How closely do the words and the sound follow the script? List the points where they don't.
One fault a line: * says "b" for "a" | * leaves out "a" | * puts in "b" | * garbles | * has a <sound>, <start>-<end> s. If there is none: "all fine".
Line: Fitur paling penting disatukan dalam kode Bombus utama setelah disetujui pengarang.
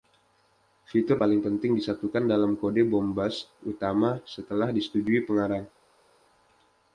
all fine